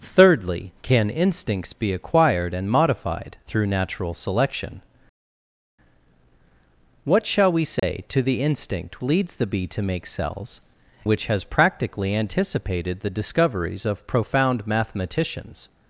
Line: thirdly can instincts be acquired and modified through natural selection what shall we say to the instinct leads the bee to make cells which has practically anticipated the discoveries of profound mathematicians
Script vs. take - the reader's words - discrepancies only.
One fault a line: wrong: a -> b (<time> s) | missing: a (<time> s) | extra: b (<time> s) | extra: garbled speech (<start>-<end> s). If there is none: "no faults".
no faults